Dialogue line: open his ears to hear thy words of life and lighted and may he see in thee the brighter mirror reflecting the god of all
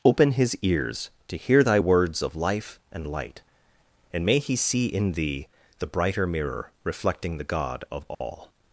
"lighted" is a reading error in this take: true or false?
true